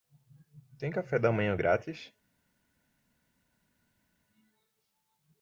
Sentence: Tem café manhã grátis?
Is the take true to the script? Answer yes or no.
no